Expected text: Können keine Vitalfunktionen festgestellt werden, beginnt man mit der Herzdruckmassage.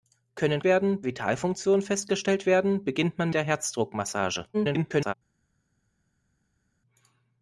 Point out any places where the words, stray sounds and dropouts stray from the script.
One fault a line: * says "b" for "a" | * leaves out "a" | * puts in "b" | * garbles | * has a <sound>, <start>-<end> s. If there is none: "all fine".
* says "werden" for "keine"
* leaves out "mit"
* garbles